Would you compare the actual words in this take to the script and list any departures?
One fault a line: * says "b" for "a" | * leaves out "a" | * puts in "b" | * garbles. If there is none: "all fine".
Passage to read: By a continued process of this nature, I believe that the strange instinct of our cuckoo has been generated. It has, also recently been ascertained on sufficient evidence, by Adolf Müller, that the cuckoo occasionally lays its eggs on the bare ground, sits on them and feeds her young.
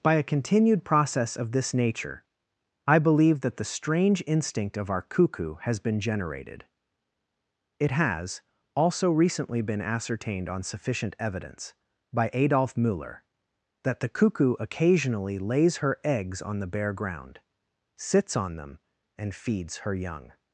* says "her" for "its"